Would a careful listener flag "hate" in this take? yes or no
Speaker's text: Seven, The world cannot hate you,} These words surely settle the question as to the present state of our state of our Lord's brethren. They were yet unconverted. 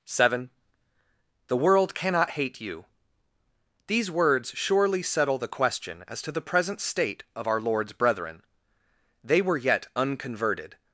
no